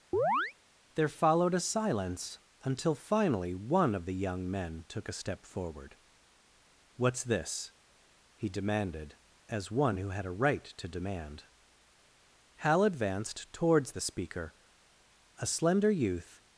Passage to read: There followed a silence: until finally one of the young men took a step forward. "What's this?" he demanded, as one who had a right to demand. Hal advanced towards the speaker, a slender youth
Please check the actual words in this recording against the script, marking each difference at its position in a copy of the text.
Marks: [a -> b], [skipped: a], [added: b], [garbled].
There followed a silence: until finally one of the young men took a step forward. "What's this?" he demanded, as one who had a right to demand. Hal advanced towards the speaker, a slender youth